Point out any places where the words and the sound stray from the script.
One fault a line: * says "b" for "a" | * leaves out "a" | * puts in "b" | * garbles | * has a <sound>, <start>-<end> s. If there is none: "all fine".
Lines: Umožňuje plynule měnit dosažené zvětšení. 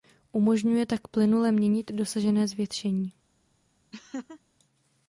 * puts in "tak"
* has a laugh, 3.9-4.4 s